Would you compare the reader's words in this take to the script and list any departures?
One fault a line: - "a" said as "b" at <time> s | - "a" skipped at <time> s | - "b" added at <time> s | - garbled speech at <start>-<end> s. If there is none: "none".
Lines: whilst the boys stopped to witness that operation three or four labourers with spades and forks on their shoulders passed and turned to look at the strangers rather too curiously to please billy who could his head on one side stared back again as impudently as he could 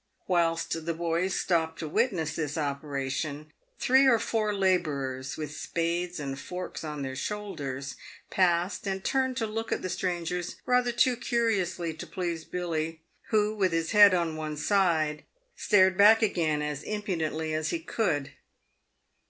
- "that" said as "this" at 2.4 s
- "could" said as "with" at 13.5 s